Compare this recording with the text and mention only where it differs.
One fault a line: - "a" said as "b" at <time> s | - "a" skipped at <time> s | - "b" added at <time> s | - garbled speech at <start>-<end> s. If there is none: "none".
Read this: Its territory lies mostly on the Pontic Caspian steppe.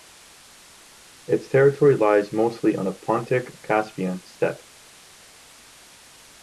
none